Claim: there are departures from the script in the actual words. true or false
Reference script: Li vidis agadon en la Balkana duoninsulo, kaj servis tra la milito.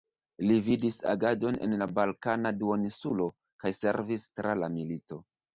false